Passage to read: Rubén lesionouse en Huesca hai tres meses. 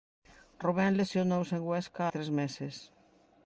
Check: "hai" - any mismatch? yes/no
yes